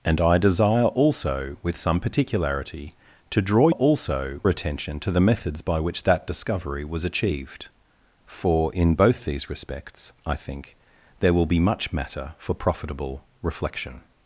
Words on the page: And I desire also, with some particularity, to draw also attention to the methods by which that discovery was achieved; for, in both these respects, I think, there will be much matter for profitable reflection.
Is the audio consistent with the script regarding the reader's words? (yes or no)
yes